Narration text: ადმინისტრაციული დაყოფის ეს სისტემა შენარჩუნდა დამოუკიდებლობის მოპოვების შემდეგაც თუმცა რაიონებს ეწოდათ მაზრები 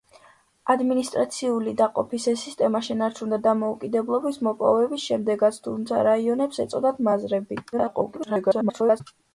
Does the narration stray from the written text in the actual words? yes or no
yes